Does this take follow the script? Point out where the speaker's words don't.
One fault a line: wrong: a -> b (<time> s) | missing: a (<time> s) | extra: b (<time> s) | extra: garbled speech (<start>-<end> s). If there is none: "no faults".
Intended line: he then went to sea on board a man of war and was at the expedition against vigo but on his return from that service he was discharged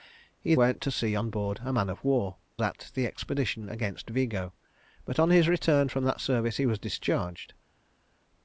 missing: then (0.6 s)
missing: and was (2.4 s)